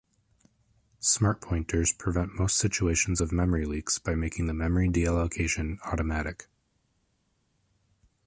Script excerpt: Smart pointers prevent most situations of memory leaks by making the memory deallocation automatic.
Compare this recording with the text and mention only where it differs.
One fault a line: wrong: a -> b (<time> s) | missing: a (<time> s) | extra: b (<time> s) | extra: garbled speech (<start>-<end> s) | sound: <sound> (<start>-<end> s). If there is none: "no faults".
no faults